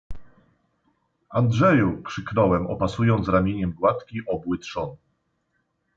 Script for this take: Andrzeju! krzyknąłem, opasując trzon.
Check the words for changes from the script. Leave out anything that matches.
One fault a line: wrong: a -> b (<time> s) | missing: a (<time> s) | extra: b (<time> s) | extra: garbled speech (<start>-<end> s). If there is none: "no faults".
extra: ramieniem gładki obły (3.3 s)